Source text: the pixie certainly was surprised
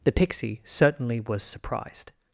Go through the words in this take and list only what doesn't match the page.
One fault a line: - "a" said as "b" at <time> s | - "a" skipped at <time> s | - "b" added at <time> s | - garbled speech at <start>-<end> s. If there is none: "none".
none